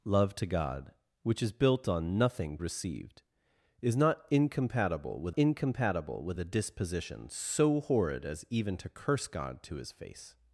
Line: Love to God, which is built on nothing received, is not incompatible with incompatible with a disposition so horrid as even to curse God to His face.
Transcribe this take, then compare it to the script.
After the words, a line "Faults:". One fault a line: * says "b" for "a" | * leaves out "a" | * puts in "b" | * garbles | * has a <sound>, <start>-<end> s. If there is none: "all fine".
Love to God, which is built on nothing received, is not incompatible with incompatible with a disposition so horrid as even to curse God to His face.
Faults:
all fine